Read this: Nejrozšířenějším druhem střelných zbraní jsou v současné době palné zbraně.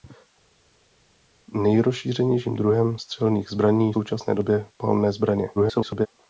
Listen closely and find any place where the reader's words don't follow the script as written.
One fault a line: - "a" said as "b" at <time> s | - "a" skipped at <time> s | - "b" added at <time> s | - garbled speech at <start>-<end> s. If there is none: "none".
- "jsou v" skipped at 3.9 s
- garbled speech at 5.5-6.1 s